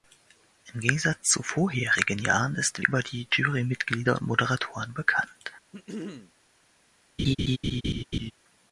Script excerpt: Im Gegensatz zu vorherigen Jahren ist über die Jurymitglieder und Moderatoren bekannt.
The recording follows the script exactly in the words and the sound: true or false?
false